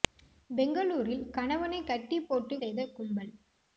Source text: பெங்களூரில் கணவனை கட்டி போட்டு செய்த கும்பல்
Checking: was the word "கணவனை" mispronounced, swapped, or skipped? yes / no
no